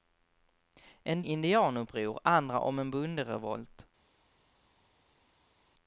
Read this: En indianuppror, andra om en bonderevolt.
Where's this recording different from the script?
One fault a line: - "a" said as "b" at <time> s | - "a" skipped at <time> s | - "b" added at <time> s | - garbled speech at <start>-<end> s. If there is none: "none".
none